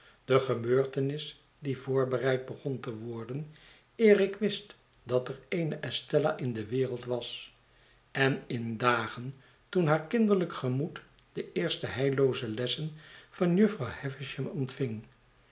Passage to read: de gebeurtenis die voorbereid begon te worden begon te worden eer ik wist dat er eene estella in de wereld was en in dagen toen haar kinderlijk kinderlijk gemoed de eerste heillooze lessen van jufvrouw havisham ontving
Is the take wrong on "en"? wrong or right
right